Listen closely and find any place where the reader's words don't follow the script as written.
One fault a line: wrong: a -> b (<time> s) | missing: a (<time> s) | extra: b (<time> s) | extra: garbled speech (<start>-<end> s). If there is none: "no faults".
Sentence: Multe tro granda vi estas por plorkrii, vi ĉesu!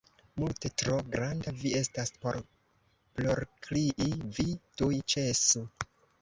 extra: tuj (4.8 s)